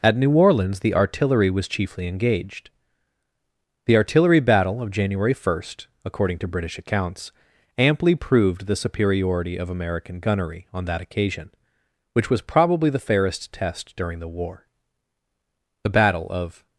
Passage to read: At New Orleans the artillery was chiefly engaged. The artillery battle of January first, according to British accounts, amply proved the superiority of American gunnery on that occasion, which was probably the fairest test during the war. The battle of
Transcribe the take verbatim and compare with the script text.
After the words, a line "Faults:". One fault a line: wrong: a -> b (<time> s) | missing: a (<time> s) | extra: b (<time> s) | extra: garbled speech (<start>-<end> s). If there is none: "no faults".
At New Orleans the artillery was chiefly engaged. The artillery battle of January first, according to British accounts, amply proved the superiority of American gunnery on that occasion, which was probably the fairest test during the war. The battle of
Faults:
no faults